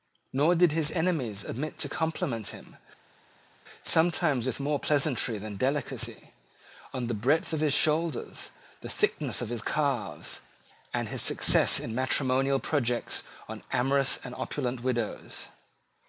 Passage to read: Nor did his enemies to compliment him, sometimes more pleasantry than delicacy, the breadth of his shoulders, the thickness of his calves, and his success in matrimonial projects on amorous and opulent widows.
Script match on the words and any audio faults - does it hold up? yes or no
no